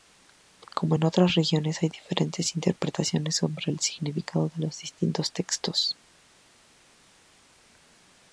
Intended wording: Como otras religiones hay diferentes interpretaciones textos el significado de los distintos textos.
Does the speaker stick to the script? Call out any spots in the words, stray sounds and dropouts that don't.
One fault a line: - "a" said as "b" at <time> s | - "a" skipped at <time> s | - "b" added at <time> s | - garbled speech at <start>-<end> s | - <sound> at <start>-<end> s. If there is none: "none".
- "en" added at 0.9 s
- "textos" said as "sobre" at 3.3 s